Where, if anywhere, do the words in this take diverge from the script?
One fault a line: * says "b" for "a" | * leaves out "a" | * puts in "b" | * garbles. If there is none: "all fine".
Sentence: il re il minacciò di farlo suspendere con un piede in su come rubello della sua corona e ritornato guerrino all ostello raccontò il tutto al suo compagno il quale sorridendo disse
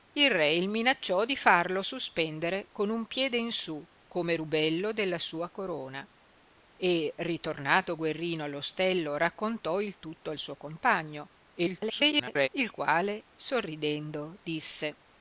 * garbles